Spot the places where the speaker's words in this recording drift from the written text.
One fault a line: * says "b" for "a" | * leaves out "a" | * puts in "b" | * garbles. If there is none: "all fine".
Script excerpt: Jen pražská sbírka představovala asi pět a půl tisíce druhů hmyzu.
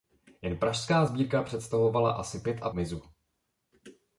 * leaves out "půl tisíce druhů"